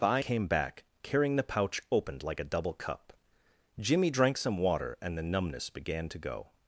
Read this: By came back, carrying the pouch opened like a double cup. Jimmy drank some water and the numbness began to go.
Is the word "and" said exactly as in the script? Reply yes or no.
yes